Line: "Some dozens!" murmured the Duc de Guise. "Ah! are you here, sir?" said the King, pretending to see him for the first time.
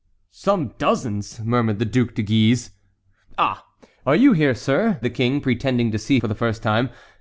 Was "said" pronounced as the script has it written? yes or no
no